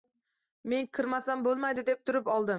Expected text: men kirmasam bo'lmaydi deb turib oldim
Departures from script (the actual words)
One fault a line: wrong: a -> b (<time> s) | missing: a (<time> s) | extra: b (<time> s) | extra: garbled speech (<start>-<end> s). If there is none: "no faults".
no faults